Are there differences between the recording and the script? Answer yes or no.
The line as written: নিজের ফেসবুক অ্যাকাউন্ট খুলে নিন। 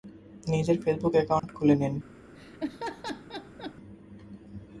no